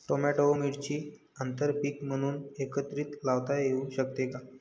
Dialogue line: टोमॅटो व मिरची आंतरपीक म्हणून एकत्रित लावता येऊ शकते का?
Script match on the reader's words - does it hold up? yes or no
yes